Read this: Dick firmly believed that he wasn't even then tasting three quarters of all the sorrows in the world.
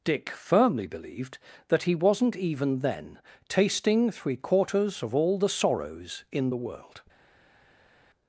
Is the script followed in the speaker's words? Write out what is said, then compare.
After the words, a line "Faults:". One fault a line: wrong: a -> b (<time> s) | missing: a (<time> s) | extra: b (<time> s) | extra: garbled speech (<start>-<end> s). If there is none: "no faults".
Dick firmly believed that he wasn't even then tasting three quarters of all the sorrows in the world.
Faults:
no faults